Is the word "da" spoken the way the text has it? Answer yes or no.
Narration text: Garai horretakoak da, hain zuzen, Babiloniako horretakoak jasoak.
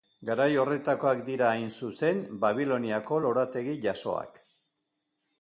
no